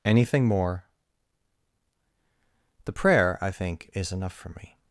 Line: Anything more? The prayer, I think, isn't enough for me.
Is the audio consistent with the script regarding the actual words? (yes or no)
no